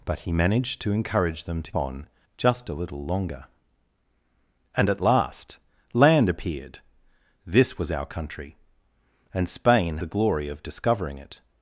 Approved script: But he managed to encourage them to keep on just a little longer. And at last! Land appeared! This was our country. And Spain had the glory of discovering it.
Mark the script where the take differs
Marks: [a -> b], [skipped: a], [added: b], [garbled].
But he managed to encourage them to [skipped: keep] on just a little longer. And at last! Land appeared! This was our country. And Spain [skipped: had] the glory of discovering it.